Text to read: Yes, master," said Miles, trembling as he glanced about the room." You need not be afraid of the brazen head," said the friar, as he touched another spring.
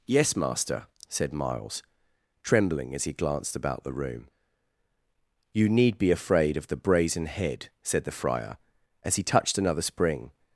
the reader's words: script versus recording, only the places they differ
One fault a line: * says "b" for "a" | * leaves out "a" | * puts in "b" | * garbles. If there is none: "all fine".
* leaves out "not"